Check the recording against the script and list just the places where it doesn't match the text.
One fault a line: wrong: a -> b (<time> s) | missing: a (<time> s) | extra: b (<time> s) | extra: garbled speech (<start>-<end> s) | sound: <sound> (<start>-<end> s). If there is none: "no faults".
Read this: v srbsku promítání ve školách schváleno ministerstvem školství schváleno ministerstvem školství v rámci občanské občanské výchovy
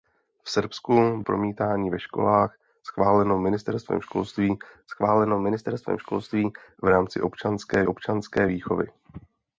no faults